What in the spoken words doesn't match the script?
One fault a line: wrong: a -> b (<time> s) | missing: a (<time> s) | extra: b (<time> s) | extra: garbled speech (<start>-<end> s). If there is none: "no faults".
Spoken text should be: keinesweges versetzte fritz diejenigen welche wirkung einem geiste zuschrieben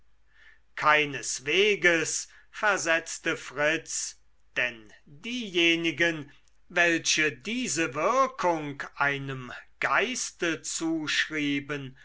extra: denn (4.6 s)
extra: diese (7.3 s)